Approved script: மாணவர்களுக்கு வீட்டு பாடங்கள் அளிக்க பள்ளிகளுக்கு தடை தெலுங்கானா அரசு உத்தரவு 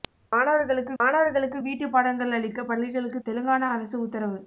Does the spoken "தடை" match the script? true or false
false